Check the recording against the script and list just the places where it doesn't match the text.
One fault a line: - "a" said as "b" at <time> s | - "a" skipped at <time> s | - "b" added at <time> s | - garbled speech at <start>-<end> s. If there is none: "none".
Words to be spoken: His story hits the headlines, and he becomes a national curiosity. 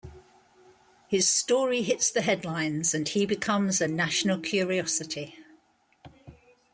none